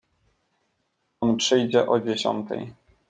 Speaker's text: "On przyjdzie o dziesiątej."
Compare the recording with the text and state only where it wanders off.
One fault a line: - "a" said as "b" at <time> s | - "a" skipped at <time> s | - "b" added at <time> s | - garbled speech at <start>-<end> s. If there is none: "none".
none